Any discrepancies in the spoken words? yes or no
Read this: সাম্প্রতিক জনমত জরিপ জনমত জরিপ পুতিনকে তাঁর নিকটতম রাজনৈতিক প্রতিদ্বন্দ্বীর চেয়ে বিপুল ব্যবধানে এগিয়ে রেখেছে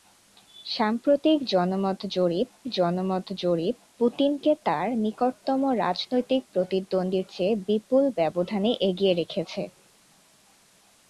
no